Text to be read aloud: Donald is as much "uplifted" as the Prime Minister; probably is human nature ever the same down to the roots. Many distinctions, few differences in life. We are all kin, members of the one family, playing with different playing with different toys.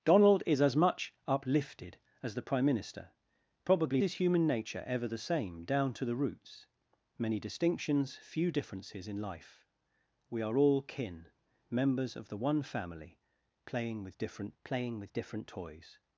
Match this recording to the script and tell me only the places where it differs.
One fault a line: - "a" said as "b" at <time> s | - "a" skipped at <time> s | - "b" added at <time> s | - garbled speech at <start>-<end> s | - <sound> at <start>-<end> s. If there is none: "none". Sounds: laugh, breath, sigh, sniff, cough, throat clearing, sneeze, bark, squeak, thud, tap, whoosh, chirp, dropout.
none